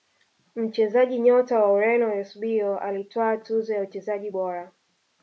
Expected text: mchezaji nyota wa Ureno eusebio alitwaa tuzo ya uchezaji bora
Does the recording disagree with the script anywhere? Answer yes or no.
no